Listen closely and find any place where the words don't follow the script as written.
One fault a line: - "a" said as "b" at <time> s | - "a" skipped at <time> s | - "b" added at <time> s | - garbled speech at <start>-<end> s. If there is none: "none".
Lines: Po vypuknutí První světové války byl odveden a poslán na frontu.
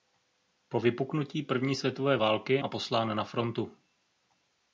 - "byl odveden" skipped at 2.6 s